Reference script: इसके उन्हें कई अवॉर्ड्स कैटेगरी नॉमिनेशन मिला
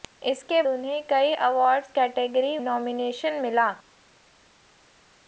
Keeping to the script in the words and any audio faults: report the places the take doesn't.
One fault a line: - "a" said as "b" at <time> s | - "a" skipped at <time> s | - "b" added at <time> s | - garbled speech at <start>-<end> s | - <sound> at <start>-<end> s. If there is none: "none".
none